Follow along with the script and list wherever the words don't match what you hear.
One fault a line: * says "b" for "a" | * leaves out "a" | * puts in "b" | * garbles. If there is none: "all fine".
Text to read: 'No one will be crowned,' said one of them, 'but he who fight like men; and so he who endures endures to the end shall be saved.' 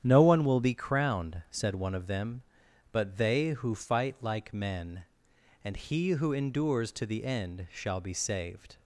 * says "they" for "he"
* leaves out "so"
* leaves out "endures"